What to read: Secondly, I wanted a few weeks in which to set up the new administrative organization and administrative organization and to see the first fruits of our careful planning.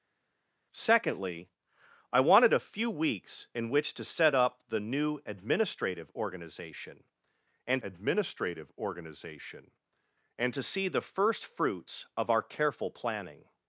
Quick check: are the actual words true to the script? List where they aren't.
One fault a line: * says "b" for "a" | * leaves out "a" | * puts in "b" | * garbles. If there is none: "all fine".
all fine